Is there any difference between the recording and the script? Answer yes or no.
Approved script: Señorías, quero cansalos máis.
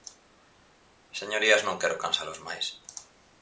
yes